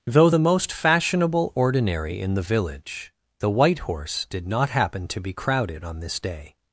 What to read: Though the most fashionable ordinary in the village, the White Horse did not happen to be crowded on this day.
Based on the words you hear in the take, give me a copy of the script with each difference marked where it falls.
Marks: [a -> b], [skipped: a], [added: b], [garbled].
Though the most fashionable ordinary in the village, the White Horse did not happen to be crowded on this day.